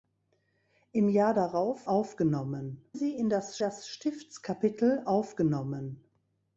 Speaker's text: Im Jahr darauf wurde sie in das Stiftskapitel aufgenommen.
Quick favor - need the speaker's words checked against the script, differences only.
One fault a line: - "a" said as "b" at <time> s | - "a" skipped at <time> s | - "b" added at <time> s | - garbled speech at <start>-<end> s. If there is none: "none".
- "wurde" said as "aufgenommen" at 1.9 s
- "das" added at 3.6 s